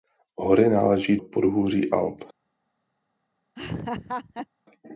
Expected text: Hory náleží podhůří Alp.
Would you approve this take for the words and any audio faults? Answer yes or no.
no